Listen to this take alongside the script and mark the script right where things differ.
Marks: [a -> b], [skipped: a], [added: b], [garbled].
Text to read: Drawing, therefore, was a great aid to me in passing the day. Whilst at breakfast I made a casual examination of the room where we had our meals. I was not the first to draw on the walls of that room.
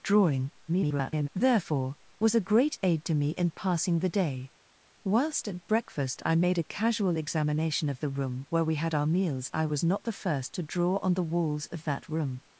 Drawing, [garbled] therefore, was a great aid to me in passing the day. Whilst at breakfast I made a casual examination of the room where we had our meals. I was not the first to draw on the walls of that room.